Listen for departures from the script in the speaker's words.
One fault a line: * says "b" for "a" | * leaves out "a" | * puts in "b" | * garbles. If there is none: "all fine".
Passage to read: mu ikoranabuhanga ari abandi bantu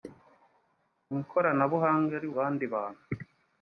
all fine